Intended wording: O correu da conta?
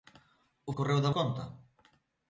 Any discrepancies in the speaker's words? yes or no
no